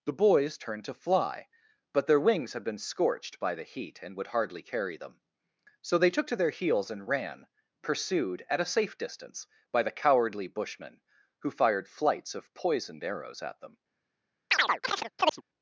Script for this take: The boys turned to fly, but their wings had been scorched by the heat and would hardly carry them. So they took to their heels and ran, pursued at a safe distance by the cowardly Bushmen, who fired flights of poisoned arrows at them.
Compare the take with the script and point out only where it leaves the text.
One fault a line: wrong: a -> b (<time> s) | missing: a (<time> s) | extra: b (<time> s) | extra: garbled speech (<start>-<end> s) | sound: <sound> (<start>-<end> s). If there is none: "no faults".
sound: chirp (14.5-15.4 s)